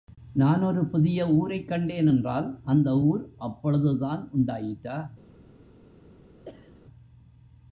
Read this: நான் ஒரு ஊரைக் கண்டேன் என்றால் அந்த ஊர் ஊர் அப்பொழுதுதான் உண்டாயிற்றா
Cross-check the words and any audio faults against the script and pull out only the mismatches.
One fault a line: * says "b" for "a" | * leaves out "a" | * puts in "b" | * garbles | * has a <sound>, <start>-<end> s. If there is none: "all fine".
* puts in "புதிய"
* leaves out "ஊர்"
* has a sneeze, 6.5-6.8 s